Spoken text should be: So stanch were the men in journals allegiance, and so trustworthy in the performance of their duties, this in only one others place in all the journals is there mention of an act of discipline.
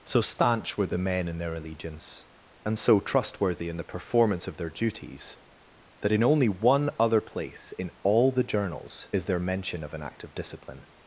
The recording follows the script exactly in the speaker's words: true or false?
false